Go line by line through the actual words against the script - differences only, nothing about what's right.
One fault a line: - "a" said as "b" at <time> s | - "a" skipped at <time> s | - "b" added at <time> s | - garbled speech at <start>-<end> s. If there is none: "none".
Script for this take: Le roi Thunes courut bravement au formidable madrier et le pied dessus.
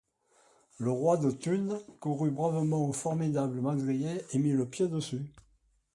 - "de" added at 1.2 s
- "mit" added at 4.4 s